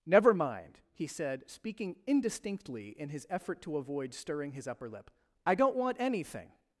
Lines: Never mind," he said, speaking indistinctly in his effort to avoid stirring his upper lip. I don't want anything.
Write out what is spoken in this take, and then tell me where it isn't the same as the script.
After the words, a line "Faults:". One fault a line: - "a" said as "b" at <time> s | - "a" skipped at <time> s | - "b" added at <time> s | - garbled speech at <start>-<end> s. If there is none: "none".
Never mind," he said, speaking indistinctly in his effort to avoid stirring his upper lip. I don't want anything.
Faults:
none